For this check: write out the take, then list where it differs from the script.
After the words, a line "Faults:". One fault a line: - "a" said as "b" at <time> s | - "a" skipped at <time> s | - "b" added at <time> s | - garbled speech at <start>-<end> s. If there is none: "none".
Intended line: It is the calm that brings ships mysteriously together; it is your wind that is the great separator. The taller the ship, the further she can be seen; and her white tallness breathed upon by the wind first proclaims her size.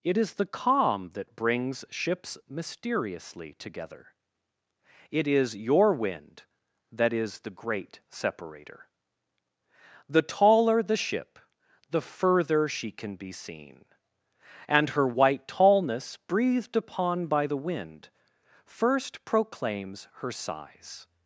It is the calm that brings ships mysteriously together; it is your wind that is the great separator. The taller the ship, the further she can be seen; and her white tallness breathed upon by the wind first proclaims her size.
Faults:
none